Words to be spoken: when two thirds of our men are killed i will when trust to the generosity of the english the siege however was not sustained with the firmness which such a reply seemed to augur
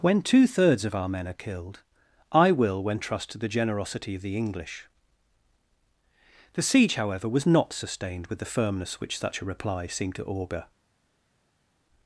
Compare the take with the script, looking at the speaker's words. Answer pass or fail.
pass